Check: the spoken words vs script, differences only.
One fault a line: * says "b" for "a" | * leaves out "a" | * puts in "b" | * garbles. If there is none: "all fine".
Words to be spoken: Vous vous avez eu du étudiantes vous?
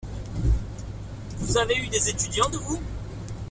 * leaves out "vous"
* says "des" for "du"